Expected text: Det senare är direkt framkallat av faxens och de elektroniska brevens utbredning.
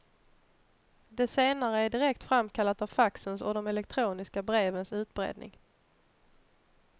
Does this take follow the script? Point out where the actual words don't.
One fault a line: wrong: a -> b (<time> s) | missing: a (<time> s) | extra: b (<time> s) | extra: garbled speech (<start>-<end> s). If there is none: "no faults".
no faults